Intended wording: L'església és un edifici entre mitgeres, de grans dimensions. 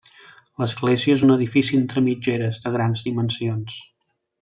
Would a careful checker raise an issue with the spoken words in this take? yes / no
no